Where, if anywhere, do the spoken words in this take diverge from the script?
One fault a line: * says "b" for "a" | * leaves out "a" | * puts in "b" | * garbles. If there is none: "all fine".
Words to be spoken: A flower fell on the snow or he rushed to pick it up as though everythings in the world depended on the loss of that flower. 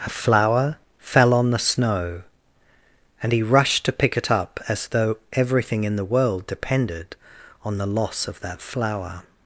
* says "and" for "or"
* says "everything" for "everythings"